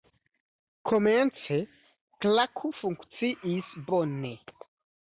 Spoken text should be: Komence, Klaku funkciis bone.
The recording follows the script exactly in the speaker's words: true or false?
true